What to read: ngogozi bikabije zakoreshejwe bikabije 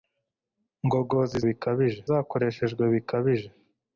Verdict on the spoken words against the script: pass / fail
pass